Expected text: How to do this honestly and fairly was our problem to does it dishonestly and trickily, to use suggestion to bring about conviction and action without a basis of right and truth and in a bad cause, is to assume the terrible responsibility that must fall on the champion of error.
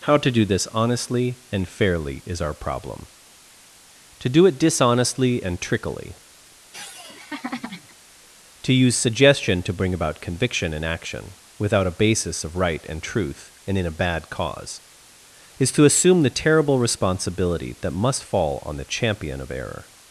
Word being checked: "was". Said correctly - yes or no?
no